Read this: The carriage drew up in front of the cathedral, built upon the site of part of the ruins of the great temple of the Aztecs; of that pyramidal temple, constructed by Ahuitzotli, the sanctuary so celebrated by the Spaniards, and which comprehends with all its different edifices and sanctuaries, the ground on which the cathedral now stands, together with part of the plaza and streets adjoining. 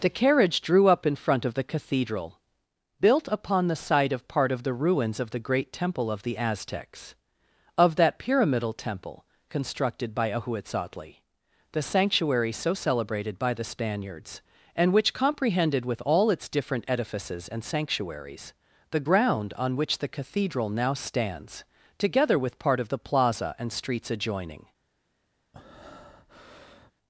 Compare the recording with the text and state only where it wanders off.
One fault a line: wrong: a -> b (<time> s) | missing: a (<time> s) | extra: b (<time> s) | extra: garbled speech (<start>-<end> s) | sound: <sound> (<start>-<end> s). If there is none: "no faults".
wrong: comprehends -> comprehended (15.1 s)
sound: breath (25.5-26.9 s)